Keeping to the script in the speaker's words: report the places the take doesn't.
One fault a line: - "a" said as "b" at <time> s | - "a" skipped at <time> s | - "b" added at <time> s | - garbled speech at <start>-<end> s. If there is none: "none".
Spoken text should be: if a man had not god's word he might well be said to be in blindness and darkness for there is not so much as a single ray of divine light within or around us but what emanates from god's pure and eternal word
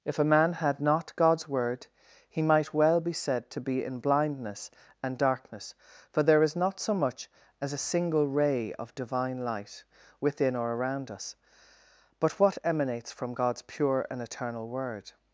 none